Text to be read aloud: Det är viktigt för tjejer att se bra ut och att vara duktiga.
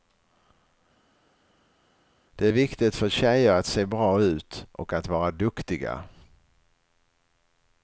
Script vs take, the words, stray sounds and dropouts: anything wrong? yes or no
no